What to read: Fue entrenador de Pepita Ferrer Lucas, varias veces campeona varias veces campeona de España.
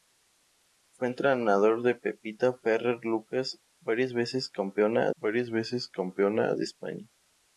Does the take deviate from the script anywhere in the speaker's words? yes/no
no